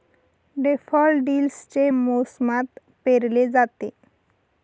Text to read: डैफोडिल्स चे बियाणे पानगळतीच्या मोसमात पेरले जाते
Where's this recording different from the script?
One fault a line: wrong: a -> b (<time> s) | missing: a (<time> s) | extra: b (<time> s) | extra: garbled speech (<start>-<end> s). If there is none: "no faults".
missing: बियाणे पानगळतीच्या (1.9 s)